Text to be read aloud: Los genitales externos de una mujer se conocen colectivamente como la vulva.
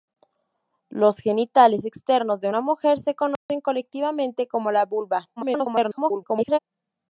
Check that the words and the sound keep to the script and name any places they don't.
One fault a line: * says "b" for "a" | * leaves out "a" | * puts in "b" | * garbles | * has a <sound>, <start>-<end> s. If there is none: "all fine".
* has a dropout, 3.4-3.5 s
* garbles